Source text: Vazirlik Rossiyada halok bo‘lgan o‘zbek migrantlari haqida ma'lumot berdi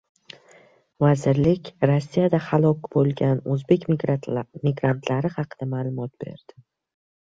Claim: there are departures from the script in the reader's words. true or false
false